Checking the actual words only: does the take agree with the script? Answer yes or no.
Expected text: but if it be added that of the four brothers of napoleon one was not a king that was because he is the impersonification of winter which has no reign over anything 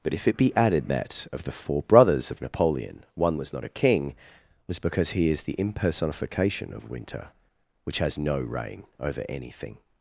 no